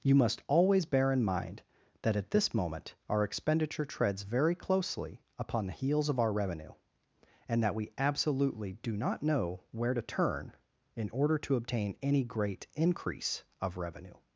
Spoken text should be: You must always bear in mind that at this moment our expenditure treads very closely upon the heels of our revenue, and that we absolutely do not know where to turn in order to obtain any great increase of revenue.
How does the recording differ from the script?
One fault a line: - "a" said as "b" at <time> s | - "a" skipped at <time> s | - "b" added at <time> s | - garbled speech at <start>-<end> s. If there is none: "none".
none